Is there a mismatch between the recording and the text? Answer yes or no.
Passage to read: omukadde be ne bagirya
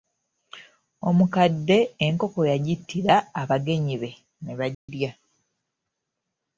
yes